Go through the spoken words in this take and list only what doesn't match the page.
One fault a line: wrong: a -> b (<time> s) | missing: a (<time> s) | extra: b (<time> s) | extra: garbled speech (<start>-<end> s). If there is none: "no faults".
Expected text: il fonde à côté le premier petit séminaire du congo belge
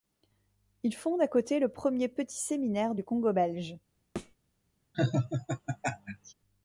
no faults